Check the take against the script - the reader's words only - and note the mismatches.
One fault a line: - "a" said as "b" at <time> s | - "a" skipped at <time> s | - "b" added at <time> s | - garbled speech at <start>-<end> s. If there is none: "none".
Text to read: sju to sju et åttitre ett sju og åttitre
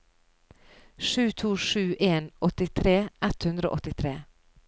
- "et" said as "en" at 2.0 s
- "sju" said as "hundre" at 3.4 s